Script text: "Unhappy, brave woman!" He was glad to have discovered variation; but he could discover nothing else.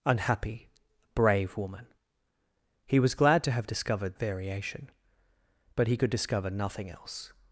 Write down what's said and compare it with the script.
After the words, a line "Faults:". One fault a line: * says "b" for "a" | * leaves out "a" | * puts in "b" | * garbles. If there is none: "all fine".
"Unhappy, brave woman!" He was glad to have discovered variation; but he could discover nothing else.
Faults:
all fine